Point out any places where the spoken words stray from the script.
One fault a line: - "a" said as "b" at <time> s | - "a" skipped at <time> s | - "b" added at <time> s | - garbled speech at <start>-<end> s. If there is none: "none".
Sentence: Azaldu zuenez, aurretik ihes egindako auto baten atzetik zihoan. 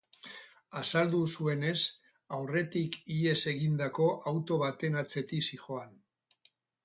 none